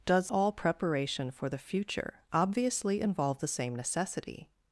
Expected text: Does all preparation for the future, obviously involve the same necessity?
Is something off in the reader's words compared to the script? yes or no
no